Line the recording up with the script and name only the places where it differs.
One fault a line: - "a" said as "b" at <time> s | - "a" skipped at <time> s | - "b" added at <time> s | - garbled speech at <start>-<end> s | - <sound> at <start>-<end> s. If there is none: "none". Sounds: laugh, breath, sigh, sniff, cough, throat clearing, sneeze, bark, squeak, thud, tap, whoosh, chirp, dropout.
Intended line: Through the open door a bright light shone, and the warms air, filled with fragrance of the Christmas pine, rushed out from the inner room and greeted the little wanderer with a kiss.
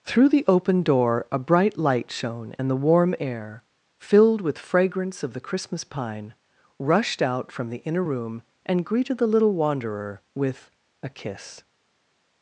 - "warms" said as "warm" at 2.8 s